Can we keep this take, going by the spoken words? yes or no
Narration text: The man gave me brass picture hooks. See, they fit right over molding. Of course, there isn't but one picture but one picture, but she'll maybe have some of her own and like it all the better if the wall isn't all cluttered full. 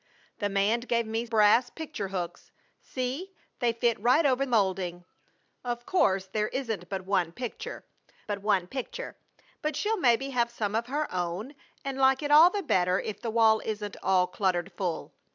yes